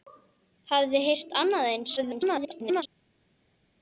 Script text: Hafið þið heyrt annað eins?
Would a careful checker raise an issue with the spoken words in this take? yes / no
yes